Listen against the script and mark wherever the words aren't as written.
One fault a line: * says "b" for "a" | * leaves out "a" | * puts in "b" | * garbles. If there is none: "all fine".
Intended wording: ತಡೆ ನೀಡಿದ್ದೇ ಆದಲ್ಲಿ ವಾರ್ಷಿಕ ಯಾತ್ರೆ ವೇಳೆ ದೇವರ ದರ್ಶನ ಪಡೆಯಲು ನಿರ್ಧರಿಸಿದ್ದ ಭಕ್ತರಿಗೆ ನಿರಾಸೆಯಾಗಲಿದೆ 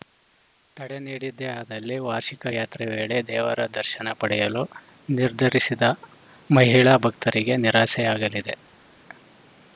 * puts in "ಮಹಿಳಾ"